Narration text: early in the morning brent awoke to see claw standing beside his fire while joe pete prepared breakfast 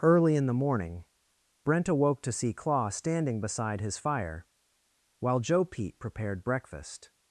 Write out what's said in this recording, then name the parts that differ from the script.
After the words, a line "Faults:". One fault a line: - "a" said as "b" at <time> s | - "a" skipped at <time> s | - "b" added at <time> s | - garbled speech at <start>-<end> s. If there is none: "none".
early in the morning brent awoke to see claw standing beside his fire while joe pete prepared breakfast
Faults:
none